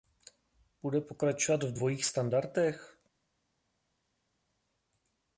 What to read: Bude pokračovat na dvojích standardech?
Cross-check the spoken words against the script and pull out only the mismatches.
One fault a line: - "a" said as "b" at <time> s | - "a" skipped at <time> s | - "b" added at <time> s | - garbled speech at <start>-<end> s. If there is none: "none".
- "na" said as "v" at 1.6 s